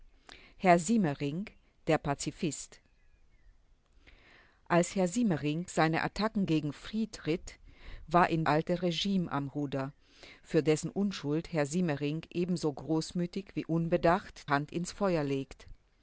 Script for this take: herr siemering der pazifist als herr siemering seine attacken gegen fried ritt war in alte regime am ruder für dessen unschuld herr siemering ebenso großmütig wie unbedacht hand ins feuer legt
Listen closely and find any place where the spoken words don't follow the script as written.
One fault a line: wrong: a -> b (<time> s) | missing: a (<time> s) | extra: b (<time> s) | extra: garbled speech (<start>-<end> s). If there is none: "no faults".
no faults